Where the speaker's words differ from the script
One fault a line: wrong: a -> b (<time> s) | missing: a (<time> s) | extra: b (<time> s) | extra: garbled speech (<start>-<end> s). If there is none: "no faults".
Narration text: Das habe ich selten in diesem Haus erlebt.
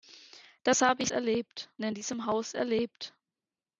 wrong: selten -> erlebt (1.1 s)